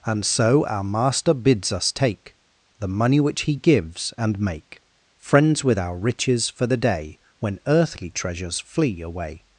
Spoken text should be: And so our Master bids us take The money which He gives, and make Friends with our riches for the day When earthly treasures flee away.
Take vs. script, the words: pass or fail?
pass